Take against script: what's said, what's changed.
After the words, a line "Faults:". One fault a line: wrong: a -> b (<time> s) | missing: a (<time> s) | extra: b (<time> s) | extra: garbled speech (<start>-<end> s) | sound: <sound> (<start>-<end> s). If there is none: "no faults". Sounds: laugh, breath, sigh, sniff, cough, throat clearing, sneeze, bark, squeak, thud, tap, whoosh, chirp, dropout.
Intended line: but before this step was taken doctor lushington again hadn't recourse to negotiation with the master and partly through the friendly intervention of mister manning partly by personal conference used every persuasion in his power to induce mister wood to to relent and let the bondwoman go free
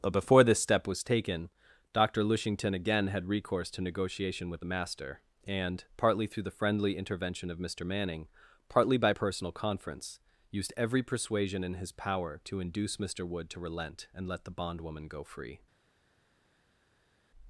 but before this step was taken doctor lushington again had recourse to negotiation with the master and partly through the friendly intervention of mister manning partly by personal conference used every persuasion in his power to induce mister wood to relent and let the bondwoman go free
Faults:
wrong: hadn't -> had (3.1 s)
missing: to (13.6 s)